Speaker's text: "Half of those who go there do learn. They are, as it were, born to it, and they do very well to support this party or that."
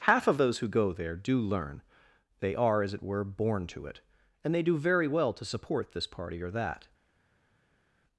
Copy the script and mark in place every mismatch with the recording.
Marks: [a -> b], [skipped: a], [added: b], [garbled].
"Half of those who go there do learn. They are, as it were, born to it, and they do very well to support this party or that."